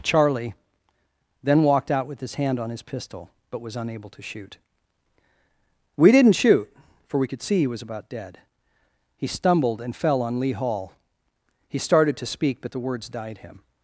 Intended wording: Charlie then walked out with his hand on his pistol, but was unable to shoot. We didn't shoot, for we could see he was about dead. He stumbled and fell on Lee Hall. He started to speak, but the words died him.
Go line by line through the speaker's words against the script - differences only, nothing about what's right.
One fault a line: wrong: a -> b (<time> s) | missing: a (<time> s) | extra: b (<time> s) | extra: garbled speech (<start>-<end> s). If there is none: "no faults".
no faults